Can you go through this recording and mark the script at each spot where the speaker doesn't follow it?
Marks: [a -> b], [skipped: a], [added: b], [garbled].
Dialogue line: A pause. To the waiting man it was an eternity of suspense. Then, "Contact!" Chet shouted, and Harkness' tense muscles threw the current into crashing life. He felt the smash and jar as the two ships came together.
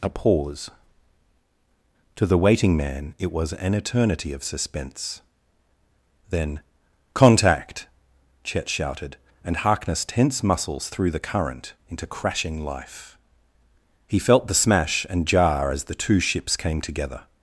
A pause. To the waiting man it was an eternity of suspense. Then, "Contact!" Chet shouted, and Harkness' tense muscles threw the current into crashing life. He felt the smash and jar as the two ships came together.